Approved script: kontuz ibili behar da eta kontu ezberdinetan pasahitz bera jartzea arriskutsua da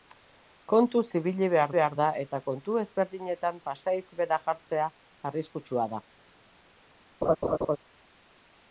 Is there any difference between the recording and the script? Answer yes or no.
yes